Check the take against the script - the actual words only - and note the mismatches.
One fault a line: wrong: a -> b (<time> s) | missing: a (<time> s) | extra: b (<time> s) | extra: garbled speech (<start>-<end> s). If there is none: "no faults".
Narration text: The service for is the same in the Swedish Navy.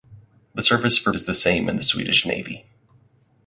no faults